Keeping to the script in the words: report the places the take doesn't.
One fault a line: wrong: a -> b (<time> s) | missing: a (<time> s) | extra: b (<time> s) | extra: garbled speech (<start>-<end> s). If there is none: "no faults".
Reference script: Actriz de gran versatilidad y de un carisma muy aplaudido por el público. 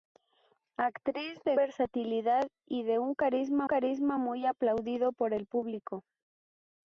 missing: gran (1.6 s)
extra: carisma (3.6 s)